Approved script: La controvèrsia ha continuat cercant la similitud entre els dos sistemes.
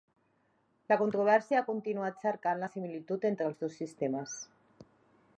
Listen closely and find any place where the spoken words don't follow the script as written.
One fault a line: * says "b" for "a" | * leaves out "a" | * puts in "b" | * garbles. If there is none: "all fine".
all fine